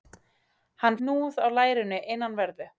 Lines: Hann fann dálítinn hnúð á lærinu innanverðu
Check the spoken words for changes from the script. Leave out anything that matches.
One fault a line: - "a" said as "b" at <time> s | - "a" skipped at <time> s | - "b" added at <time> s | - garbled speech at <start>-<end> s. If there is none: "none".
- "fann dálítinn" skipped at 1.0 s